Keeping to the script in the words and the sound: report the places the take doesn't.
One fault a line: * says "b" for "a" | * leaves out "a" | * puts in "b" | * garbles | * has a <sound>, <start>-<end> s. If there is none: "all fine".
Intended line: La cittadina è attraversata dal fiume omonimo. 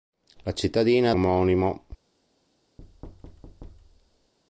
* leaves out "attraversata dal fiume"
* has a thud, 2.8-4.3 s